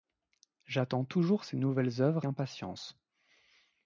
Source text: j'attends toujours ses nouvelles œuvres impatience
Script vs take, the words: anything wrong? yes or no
no